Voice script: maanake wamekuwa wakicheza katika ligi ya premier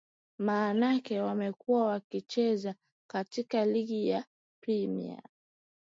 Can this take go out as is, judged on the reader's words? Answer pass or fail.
pass